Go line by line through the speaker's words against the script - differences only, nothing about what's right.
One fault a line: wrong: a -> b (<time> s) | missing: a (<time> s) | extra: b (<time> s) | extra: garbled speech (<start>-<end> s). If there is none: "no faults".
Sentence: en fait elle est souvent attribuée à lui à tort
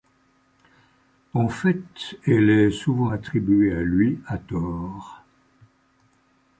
no faults